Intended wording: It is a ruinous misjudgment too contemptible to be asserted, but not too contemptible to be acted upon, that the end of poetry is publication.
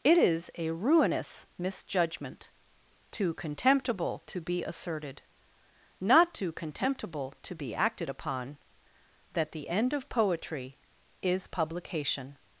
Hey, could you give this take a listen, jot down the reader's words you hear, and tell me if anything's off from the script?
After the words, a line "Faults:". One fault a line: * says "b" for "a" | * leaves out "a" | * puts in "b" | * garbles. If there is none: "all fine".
It is a ruinous misjudgment too contemptible to be asserted, not too contemptible to be acted upon, that the end of poetry is publication.
Faults:
* leaves out "but"